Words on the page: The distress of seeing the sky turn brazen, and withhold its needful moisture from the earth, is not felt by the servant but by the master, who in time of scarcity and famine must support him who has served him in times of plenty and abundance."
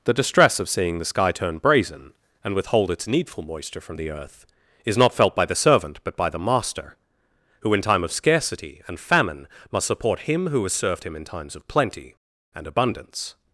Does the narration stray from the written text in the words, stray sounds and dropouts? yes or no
no